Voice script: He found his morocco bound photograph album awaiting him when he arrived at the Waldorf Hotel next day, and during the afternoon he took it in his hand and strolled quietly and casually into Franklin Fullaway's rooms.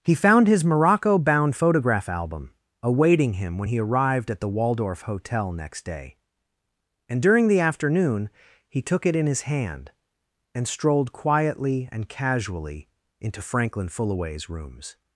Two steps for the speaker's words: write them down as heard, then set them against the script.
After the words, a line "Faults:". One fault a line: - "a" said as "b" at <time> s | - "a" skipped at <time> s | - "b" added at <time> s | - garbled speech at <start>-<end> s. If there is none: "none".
He found his morocco bound photograph album awaiting him when he arrived at the Waldorf Hotel next day, and during the afternoon he took it in his hand and strolled quietly and casually into Franklin Fullaway's rooms.
Faults:
none